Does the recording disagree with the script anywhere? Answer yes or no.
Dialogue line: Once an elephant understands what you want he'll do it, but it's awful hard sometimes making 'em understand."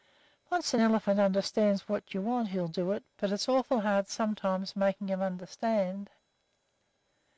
no